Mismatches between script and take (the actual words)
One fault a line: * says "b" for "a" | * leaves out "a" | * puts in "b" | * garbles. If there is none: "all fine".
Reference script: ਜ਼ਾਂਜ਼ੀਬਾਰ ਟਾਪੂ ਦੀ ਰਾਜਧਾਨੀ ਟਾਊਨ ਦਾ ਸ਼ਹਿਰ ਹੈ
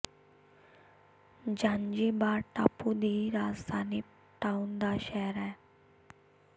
all fine